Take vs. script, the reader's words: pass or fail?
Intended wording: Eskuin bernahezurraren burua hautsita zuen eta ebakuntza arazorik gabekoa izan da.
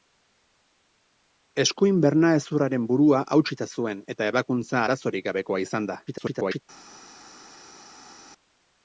fail